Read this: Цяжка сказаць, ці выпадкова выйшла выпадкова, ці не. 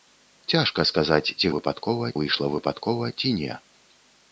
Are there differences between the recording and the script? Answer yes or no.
no